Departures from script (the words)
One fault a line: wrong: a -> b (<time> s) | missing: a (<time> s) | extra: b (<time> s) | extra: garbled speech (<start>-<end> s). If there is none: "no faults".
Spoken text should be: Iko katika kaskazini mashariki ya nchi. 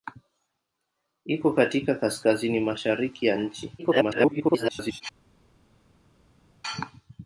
extra: garbled speech (3.8-5.0 s)